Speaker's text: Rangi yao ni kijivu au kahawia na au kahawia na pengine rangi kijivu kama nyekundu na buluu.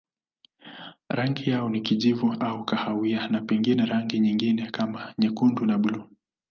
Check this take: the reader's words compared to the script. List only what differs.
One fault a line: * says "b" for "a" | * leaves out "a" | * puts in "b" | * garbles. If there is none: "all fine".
* leaves out "au kahawia na"
* says "nyingine" for "kijivu"